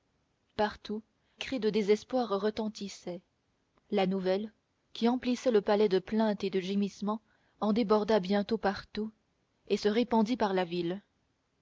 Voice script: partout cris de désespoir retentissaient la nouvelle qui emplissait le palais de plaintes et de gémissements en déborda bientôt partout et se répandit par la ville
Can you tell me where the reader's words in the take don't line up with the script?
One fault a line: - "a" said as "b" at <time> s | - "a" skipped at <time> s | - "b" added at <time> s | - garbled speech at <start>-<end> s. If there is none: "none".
none